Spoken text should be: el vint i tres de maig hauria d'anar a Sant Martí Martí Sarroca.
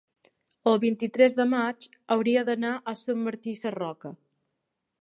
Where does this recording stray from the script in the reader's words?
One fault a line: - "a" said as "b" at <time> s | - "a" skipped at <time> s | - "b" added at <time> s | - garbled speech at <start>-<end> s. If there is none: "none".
- "Martí" skipped at 3.6 s